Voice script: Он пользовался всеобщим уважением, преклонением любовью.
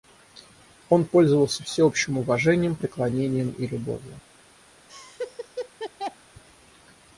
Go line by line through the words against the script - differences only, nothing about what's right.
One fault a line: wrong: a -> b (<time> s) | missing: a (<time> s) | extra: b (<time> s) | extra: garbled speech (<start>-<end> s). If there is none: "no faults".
extra: и (3.5 s)